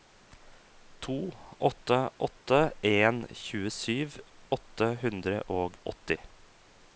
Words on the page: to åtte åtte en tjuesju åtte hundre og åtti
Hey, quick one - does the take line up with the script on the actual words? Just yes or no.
yes